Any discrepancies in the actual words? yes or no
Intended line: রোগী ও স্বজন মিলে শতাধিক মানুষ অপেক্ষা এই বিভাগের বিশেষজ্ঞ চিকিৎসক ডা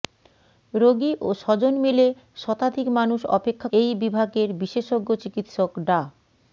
no